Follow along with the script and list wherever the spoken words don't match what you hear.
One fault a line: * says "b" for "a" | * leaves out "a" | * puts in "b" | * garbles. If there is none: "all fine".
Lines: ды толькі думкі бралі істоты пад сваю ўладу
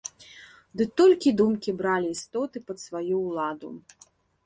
all fine